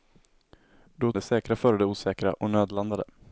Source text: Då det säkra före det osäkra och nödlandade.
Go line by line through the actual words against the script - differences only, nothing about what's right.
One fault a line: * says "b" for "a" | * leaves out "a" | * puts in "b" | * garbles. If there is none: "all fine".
all fine